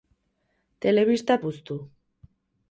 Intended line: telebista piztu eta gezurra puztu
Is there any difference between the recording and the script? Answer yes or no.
yes